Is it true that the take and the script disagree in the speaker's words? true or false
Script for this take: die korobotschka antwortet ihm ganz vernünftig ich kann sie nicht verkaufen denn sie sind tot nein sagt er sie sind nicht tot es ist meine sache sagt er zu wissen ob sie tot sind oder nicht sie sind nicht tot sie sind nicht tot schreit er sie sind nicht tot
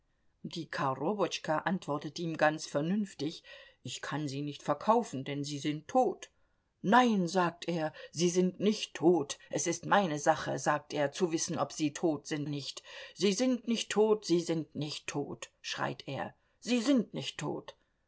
true